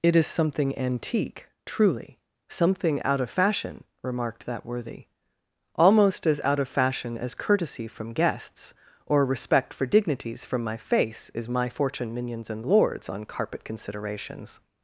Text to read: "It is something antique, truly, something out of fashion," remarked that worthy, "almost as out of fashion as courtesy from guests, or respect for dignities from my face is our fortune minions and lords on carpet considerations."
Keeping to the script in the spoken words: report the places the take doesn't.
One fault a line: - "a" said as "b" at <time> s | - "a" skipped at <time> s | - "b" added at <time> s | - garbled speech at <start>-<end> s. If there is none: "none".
- "our" said as "my" at 11.5 s